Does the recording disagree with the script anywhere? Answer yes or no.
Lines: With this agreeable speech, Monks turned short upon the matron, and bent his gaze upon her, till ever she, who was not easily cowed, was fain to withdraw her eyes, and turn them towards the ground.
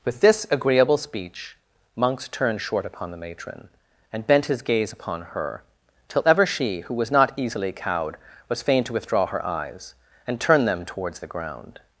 no